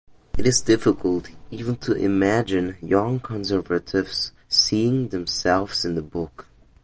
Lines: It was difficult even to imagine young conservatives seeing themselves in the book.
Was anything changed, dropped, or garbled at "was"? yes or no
yes